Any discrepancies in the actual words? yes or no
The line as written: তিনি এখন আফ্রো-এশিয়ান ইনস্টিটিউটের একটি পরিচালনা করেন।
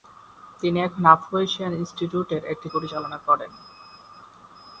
no